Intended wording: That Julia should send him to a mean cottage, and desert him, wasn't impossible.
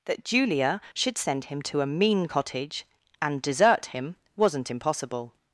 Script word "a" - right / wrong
right